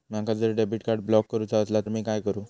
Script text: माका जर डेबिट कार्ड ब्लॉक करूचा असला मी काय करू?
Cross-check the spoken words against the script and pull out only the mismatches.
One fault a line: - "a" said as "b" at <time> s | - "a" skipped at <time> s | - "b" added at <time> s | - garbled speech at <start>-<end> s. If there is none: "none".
none